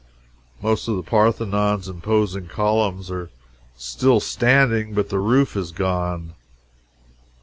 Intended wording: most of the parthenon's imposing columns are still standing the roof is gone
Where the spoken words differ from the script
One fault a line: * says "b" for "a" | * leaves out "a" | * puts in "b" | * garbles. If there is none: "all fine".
* puts in "but"